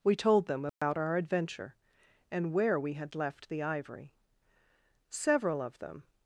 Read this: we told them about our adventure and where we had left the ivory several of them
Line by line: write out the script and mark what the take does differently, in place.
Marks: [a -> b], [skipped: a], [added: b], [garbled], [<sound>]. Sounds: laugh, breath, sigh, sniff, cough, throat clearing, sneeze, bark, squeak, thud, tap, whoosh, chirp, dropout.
we told them about [dropout] our adventure and where we had left the ivory several of them